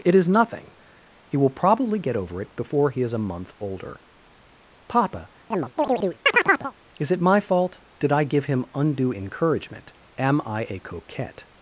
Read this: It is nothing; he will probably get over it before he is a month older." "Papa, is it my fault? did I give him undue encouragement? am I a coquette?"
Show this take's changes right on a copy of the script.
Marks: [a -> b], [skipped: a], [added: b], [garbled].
It is nothing; he will probably get over it before he is a month older." "Papa, is it my fault? did I give him undue encouragement? am I a coquette?"